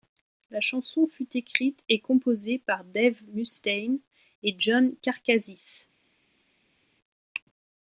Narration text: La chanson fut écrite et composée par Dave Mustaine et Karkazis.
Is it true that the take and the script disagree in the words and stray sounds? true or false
true